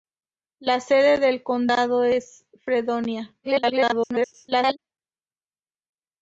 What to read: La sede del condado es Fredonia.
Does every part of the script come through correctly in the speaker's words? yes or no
no